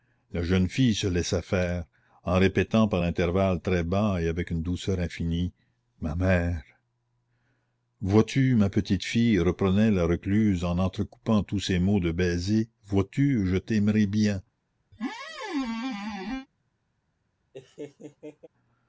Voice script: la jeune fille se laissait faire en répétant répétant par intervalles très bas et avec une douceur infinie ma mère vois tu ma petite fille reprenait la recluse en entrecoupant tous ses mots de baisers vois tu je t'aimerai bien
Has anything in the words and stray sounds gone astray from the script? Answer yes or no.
yes